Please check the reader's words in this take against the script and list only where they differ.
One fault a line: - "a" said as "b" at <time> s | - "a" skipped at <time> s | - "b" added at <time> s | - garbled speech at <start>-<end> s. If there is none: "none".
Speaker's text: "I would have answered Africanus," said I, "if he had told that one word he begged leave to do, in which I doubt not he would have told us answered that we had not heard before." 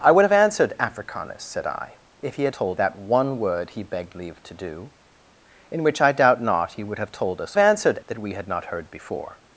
none